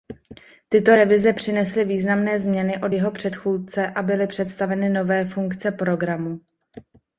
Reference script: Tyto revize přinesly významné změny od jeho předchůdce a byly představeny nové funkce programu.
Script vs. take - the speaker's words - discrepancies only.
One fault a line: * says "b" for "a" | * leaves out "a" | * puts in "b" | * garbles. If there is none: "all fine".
all fine